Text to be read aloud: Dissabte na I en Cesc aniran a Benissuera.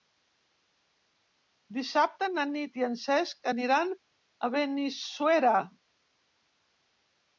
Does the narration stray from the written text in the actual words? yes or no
yes